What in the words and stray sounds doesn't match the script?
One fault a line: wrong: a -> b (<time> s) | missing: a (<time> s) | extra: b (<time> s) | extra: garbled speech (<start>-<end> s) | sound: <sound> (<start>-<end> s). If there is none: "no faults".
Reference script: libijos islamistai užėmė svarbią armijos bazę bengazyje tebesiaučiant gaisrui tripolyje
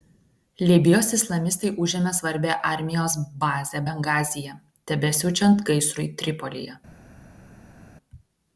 no faults